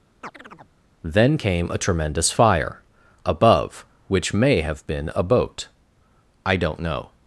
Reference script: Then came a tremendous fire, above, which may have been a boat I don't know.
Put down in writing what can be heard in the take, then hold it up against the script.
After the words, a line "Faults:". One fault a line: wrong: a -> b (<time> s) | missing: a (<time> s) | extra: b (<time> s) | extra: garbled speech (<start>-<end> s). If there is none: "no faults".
Then came a tremendous fire, above, which may have been a boat I don't know.
Faults:
no faults